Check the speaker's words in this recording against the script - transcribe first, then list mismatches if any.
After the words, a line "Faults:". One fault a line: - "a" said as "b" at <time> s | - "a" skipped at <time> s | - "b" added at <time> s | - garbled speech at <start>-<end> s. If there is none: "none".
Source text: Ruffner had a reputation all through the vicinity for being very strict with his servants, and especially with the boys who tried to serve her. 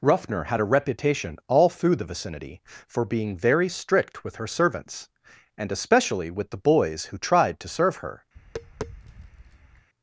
Ruffner had a reputation all through the vicinity for being very strict with her servants, and especially with the boys who tried to serve her.
Faults:
- "his" said as "her" at 4.4 s